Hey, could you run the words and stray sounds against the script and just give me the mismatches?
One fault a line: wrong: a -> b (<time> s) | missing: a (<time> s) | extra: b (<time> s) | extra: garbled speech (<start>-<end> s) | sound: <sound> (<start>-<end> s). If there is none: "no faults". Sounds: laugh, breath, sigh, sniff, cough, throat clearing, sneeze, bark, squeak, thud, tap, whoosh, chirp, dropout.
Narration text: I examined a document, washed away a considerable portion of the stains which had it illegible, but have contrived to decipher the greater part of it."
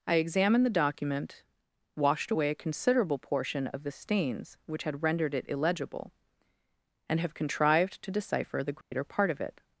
wrong: a -> the (0.7 s)
extra: rendered (5.0 s)
wrong: but -> and (7.1 s)
sound: dropout (8.8-8.9 s)